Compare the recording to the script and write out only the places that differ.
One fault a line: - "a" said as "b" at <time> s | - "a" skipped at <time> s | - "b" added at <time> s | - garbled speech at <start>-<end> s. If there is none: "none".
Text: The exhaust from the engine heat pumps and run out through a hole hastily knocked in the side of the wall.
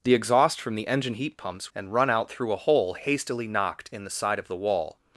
none